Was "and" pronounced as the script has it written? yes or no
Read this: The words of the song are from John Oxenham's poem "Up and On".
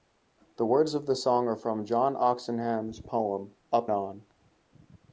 no